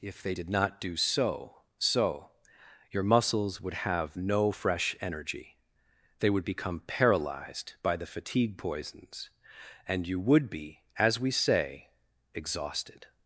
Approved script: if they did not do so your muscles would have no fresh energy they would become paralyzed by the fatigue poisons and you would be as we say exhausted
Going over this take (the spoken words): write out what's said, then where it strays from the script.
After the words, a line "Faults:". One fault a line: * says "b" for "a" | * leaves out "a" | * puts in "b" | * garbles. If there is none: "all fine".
if they did not do so so your muscles would have no fresh energy they would become paralyzed by the fatigue poisons and you would be as we say exhausted
Faults:
* puts in "so"